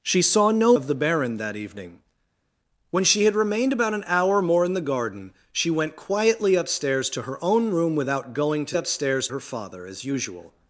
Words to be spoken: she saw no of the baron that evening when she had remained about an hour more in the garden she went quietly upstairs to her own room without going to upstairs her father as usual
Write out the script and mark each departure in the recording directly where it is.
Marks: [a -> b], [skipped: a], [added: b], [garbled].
she saw no of the baron that evening when she had remained about an hour more in the garden she went quietly upstairs to her own room without going to upstairs her father as usual